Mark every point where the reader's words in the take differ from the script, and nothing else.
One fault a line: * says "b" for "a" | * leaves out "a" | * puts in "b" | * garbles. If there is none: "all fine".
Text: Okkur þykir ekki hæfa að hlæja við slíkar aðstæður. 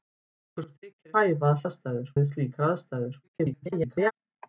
* leaves out "ekki"
* says "aðstæður" for "hlæja"
* garbles